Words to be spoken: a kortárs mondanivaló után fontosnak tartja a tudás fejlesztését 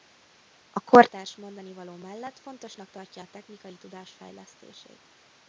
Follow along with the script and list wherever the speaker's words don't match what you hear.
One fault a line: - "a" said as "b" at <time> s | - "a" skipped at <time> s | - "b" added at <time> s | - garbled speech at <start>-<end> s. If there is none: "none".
- "után" said as "mellett" at 1.9 s
- "technikai" added at 3.3 s